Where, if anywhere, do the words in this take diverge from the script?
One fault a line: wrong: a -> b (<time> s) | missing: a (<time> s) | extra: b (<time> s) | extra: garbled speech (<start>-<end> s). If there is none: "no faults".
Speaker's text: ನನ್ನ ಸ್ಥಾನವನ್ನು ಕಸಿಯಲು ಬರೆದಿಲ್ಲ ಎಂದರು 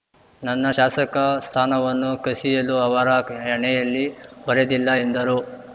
extra: ಶಾಸಕ (0.7 s)
extra: ಅವರ ಹಣೆಯಲ್ಲಿ (2.8 s)